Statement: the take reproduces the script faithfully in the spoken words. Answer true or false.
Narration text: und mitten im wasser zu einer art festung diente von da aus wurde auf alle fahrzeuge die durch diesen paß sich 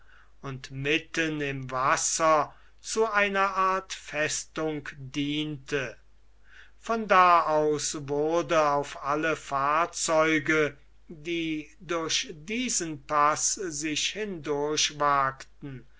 true